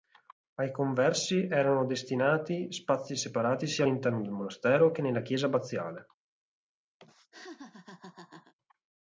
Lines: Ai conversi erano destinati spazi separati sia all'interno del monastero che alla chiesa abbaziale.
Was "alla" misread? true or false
true